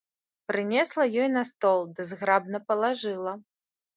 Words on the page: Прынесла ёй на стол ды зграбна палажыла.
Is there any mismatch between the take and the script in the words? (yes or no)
no